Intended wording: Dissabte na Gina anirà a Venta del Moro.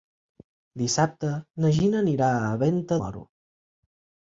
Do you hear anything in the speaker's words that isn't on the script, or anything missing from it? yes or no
yes